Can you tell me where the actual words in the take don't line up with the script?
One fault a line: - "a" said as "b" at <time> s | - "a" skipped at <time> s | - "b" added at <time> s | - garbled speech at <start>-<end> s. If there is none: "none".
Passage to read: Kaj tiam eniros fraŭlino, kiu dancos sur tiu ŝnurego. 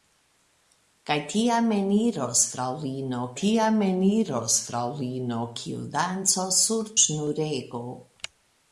- "tiam eniros fraŭlino" added at 3.4 s
- "tiu" skipped at 6.9 s